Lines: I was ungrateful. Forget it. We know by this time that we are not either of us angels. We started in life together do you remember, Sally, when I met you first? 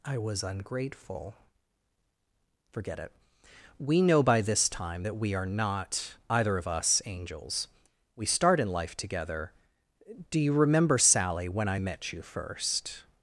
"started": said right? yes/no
no